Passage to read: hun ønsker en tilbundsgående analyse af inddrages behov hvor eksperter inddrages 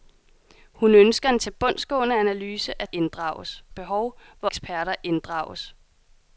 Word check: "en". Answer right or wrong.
right